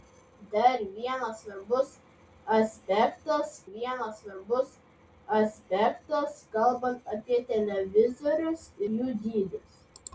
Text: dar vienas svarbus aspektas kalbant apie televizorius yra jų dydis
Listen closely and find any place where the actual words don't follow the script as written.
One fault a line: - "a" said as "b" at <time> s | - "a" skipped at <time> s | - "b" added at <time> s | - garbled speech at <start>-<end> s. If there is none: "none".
- "vienas svarbus aspektas" added at 3.7 s
- "yra" skipped at 8.7 s